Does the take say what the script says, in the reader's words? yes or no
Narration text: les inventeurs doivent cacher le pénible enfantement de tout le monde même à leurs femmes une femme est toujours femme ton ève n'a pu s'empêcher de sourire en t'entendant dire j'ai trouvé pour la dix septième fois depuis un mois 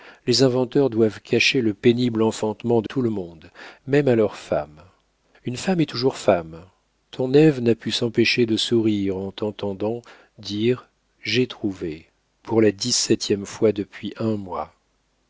yes